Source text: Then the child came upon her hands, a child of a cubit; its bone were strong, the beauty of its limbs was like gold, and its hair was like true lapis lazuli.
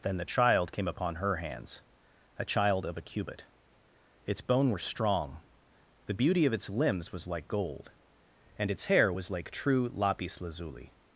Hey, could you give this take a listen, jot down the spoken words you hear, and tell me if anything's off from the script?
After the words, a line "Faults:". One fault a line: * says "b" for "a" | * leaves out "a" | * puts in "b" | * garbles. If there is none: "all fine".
Then the child came upon her hands, a child of a cubit; its bone were strong, the beauty of its limbs was like gold, and its hair was like true lapis lazuli.
Faults:
all fine